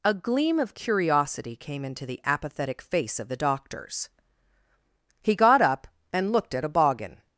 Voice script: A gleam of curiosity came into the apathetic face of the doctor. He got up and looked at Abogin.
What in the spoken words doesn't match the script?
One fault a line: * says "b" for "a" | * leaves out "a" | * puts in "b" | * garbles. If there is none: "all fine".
* says "doctors" for "doctor"